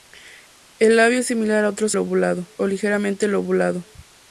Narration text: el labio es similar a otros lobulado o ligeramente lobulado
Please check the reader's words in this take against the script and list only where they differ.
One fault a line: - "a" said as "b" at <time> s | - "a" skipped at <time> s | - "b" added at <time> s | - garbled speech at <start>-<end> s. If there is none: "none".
none